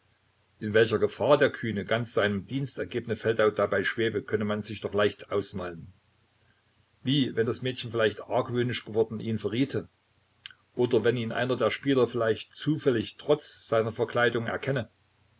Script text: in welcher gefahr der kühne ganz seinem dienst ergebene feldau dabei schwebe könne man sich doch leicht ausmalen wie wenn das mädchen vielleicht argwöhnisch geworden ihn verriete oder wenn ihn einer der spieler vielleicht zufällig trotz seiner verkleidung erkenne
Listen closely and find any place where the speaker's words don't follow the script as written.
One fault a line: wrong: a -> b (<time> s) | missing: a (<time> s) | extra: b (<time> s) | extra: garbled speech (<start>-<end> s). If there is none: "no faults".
no faults